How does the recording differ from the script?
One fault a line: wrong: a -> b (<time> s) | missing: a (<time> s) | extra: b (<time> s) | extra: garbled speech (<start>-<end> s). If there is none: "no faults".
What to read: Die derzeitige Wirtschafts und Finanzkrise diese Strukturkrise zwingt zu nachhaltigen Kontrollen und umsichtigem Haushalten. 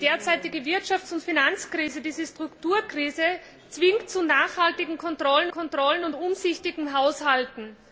extra: Kontrollen (5.5 s)